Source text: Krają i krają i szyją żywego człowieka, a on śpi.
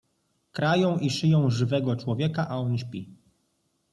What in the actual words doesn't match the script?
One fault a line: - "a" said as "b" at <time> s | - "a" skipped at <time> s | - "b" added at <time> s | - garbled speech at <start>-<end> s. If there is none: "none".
- "krają i" skipped at 1.1 s